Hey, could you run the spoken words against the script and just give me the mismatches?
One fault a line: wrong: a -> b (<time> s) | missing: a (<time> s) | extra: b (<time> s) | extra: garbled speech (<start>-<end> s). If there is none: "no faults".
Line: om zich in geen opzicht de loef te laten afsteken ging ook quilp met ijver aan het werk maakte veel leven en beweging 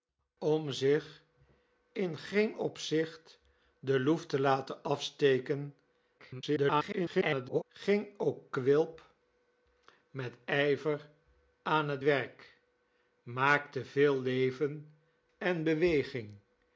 extra: garbled speech (6.2-7.6 s)